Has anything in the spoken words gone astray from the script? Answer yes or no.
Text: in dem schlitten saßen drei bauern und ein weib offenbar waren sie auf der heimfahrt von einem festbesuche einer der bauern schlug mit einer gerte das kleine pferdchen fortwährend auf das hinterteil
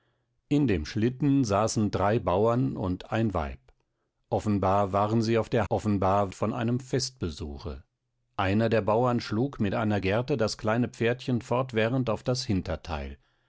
yes